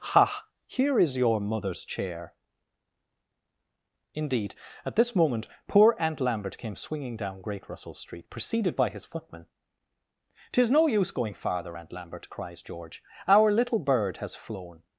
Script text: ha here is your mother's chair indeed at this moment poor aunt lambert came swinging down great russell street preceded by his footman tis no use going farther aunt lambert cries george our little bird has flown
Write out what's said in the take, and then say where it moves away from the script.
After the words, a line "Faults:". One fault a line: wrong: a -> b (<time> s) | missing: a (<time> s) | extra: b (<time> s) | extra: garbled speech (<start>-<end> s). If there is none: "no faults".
ha here is your mother's chair indeed at this moment poor aunt lambert came swinging down great russell street preceded by his footman tis no use going farther aunt lambert cries george our little bird has flown
Faults:
no faults